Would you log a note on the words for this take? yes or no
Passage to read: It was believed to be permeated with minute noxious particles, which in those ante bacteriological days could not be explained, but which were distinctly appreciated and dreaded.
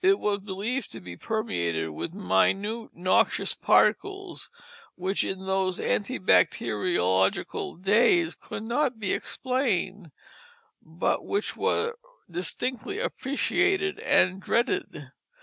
no